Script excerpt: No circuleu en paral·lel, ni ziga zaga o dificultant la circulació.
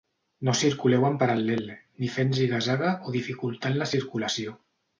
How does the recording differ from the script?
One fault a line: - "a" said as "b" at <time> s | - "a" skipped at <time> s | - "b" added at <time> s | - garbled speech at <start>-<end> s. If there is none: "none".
- "fent" added at 2.2 s